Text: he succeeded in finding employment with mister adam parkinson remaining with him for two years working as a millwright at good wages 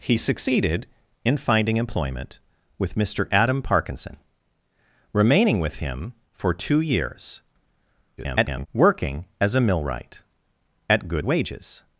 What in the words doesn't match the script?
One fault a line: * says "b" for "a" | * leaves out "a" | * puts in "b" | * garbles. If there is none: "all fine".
* garbles